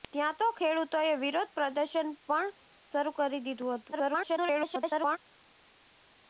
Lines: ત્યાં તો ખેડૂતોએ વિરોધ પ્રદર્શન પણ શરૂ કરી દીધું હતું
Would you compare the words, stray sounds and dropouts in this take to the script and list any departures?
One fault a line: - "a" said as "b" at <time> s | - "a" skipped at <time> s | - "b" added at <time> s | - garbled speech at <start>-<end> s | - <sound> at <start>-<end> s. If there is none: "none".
- garbled speech at 3.9-5.2 s